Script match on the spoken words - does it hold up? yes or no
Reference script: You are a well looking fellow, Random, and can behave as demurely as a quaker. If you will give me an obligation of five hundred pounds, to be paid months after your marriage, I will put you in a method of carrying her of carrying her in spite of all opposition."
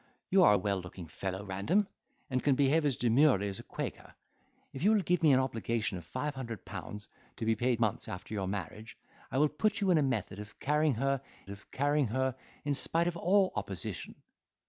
yes